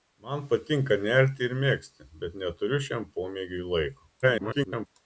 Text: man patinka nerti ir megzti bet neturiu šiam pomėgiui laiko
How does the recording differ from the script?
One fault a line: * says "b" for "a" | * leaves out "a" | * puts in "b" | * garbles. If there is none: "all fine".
* garbles